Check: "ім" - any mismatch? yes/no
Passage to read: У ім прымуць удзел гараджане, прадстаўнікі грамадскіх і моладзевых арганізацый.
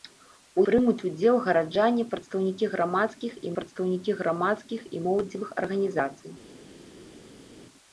yes